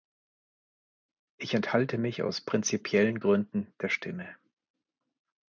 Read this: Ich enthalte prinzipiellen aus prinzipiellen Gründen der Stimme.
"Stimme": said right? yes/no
yes